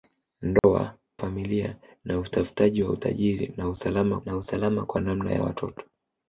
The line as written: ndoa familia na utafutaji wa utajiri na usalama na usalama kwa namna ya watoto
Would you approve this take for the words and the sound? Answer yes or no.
no